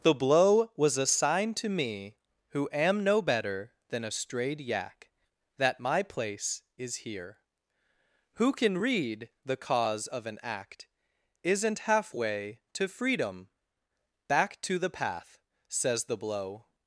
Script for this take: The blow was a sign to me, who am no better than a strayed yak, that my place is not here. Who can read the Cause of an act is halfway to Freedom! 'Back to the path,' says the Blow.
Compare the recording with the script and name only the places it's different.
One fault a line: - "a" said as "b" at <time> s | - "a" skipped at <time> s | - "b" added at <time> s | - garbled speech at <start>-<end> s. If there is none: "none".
- "not" skipped at 7.0 s
- "is" said as "isn't" at 11.4 s